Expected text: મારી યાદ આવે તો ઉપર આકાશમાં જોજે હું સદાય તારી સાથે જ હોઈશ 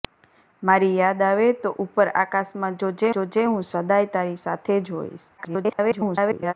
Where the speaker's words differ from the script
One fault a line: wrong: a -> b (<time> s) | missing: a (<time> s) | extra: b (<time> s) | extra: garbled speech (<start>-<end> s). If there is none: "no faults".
extra: જોજે (3.1 s)
extra: garbled speech (5.4-6.5 s)